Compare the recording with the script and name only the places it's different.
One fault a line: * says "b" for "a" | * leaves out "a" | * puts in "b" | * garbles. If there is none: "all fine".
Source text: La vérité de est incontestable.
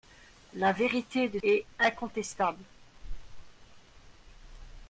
all fine